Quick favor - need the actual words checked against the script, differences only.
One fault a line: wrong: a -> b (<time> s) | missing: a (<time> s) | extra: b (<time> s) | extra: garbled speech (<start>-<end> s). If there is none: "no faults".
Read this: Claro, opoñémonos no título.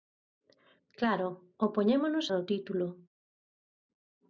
no faults